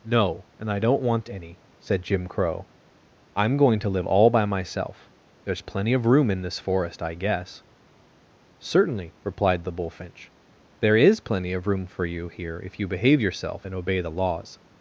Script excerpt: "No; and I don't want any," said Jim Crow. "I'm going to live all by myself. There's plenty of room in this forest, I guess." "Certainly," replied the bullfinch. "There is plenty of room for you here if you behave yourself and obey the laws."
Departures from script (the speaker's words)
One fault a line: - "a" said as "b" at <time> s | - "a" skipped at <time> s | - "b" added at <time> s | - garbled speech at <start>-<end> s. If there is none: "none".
none